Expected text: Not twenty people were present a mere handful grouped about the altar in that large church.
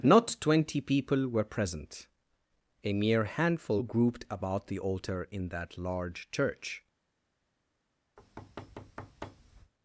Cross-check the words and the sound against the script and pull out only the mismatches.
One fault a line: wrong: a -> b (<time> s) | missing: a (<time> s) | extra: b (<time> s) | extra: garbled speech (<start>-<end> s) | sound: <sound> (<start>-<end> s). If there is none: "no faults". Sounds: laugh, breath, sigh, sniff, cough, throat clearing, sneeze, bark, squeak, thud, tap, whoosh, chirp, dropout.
sound: thud (8.2-9.7 s)